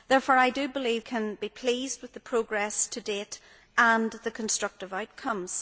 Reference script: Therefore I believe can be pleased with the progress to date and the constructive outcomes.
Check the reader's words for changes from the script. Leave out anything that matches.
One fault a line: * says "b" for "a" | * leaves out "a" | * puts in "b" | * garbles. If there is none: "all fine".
all fine